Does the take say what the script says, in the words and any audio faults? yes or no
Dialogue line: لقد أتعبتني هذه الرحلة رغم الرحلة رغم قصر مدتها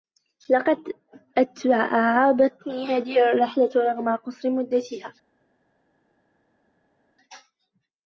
no